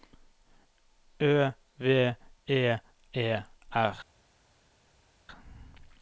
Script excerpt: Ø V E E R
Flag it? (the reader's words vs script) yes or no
no